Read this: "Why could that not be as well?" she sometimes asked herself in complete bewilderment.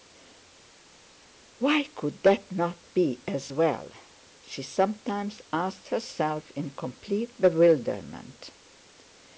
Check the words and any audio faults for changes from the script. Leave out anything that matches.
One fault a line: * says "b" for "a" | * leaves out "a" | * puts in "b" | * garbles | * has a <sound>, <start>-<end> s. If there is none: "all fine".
all fine